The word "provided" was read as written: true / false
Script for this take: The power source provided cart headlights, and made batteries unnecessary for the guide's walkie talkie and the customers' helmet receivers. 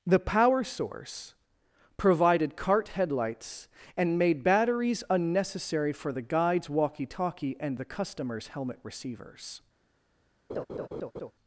true